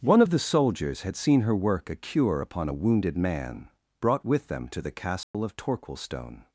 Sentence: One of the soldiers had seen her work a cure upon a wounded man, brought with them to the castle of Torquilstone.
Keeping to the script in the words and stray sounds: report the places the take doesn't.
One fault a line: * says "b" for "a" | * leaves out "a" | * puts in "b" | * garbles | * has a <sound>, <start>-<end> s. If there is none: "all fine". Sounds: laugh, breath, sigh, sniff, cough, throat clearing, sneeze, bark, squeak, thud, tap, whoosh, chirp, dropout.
* has a dropout, 5.2-5.3 s